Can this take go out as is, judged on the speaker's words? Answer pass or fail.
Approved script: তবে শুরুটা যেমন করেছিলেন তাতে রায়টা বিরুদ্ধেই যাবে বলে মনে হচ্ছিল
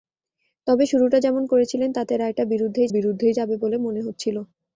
fail